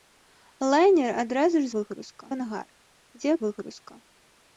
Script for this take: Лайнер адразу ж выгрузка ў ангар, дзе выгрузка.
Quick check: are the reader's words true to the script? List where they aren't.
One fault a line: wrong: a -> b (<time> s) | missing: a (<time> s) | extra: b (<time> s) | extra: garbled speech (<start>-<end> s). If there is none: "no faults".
no faults